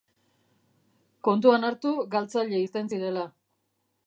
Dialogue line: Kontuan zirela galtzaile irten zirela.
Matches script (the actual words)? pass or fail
fail